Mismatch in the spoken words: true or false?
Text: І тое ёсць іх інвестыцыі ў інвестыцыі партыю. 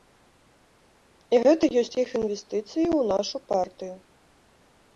true